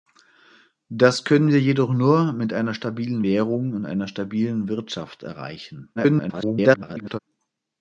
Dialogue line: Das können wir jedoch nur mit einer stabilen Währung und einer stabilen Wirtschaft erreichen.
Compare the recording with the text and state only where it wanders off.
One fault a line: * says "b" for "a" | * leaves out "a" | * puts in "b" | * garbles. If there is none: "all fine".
* garbles